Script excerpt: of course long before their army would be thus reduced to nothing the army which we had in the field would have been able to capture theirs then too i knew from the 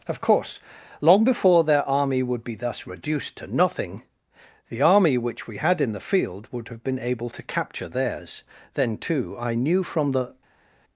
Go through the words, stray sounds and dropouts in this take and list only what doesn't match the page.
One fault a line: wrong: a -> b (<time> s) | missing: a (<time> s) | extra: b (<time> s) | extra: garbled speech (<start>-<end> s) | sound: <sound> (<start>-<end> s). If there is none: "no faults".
no faults